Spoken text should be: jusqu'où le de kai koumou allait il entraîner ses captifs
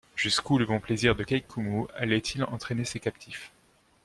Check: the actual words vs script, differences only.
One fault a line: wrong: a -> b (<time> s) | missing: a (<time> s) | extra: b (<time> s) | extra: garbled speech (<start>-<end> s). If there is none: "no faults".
extra: bon plaisir (0.7 s)